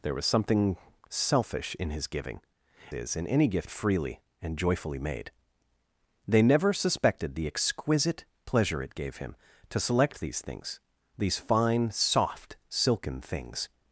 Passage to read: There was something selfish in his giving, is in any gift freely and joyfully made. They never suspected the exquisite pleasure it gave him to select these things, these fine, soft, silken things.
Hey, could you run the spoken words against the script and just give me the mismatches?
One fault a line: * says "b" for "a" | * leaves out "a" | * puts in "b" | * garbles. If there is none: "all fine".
all fine